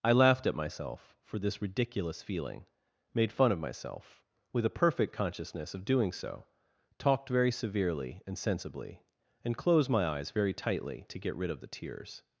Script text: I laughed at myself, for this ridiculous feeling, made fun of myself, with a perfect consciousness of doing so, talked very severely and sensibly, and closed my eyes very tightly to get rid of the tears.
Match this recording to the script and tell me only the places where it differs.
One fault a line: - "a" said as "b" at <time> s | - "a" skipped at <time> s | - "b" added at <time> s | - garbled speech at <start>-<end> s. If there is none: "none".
none